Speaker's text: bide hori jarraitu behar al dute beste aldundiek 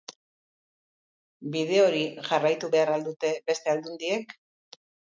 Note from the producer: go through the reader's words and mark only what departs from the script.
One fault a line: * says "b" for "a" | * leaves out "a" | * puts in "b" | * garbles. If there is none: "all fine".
all fine